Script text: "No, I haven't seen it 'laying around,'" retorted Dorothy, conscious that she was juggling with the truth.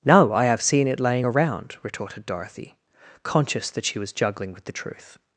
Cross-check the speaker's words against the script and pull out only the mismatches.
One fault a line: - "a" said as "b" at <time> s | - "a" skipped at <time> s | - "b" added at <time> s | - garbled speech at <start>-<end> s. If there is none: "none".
- "haven't" said as "have" at 0.5 s